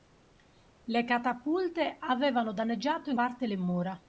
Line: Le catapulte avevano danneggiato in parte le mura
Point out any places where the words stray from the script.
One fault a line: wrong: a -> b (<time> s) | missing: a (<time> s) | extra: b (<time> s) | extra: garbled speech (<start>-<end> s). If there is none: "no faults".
no faults